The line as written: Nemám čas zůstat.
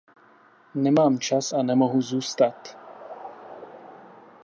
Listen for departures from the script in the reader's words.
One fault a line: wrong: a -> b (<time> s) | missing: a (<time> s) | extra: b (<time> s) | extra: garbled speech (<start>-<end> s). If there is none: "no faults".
extra: a nemohu (1.5 s)